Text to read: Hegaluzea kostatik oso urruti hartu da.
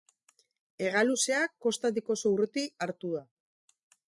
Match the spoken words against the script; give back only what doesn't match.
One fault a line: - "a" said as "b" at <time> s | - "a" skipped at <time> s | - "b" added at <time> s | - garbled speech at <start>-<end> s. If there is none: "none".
none